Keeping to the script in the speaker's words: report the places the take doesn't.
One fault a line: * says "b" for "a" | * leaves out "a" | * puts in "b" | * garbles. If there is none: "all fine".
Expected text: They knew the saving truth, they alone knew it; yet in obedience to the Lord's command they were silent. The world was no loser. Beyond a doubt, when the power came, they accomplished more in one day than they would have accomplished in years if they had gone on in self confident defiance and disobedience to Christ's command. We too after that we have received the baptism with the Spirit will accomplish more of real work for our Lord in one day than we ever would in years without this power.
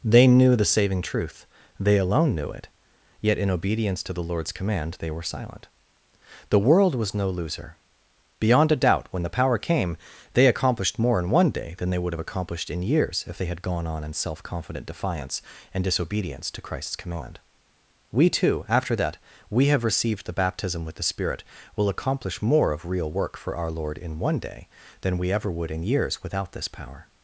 all fine